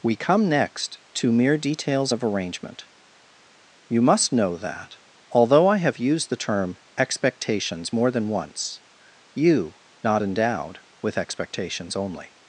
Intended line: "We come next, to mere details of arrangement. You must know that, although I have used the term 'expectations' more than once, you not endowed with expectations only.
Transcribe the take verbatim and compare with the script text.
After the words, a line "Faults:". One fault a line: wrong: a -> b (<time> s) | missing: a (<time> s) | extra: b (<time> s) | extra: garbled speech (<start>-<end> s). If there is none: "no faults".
"We come next, to mere details of arrangement. You must know that, although I have used the term 'expectations' more than once, you not endowed with expectations only.
Faults:
no faults